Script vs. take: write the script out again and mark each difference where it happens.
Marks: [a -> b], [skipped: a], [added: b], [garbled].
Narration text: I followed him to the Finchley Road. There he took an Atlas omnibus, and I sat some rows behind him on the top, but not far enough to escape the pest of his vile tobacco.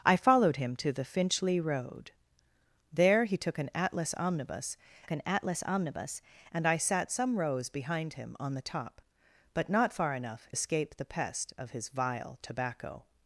I followed him to the Finchley Road. There he took an Atlas omnibus, [added: an Atlas omnibus] and I sat some rows behind him on the top, but not far enough [skipped: to] escape the pest of his vile tobacco.